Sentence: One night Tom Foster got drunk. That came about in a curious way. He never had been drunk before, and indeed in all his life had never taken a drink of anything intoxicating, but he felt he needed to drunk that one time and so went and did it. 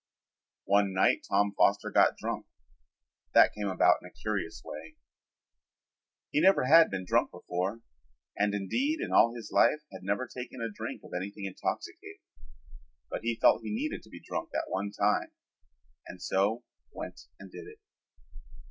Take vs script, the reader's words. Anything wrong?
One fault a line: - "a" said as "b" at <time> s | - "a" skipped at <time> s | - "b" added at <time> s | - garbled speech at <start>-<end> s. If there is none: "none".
- "be" added at 14.1 s